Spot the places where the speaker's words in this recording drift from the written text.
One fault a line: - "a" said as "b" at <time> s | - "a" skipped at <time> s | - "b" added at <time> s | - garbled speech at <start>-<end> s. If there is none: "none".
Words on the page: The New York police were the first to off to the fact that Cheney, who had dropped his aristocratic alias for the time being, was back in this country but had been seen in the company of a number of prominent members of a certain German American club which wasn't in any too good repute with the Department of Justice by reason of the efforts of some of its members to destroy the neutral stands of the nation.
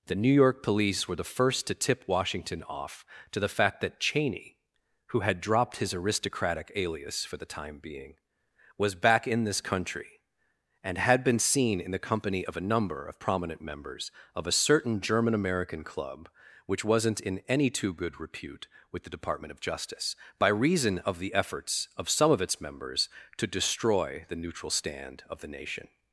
- "tip Washington" added at 1.8 s
- "but" said as "and" at 10.8 s
- "stands" said as "stand" at 24.7 s